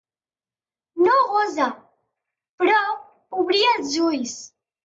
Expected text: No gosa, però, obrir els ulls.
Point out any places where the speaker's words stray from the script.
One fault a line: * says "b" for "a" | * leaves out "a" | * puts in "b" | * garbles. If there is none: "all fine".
all fine